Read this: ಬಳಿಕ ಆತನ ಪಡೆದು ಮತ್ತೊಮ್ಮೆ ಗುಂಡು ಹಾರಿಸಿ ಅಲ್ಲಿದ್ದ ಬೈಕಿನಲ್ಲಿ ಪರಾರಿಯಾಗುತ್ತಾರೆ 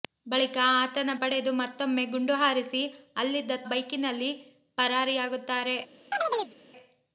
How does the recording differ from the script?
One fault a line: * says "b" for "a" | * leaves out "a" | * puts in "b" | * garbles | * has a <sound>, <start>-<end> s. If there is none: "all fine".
* has a chirp, 6.1-6.5 s